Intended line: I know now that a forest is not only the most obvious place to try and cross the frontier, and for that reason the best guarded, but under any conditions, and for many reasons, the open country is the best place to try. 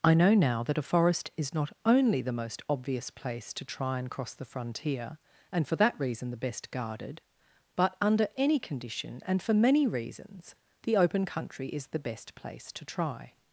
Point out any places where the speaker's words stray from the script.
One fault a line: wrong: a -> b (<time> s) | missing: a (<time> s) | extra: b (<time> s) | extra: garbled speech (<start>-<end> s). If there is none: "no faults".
wrong: conditions -> condition (8.6 s)